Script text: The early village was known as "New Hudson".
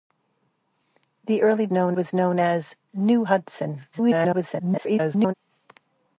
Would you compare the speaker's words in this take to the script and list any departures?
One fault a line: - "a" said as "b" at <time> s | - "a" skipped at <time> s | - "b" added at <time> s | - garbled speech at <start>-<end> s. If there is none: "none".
- "village" said as "known" at 1.7 s
- garbled speech at 3.9-5.3 s